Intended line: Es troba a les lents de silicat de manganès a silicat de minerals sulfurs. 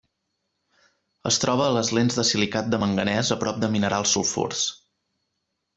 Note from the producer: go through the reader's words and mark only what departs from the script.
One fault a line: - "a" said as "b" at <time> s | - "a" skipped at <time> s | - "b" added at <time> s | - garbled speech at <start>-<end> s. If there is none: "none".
- "silicat" said as "prop" at 3.5 s